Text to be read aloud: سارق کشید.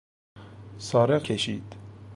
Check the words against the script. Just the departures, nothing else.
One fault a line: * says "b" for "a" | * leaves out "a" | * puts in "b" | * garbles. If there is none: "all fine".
all fine